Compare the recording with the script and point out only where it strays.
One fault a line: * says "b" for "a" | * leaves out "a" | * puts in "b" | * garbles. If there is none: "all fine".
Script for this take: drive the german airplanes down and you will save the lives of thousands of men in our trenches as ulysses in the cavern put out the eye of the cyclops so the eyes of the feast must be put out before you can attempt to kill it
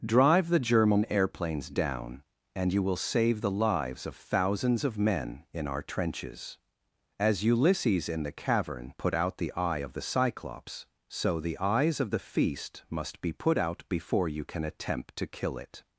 all fine